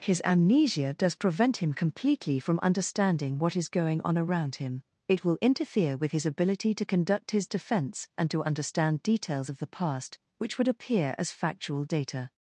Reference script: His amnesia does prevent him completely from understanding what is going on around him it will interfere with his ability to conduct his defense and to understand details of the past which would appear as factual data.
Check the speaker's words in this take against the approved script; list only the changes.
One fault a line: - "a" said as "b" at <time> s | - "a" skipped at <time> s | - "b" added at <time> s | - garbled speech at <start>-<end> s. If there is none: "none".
none